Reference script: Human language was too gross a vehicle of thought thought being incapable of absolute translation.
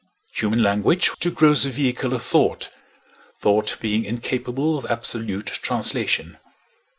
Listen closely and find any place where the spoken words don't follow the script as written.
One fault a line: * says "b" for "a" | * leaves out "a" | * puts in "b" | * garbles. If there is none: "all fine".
* leaves out "was"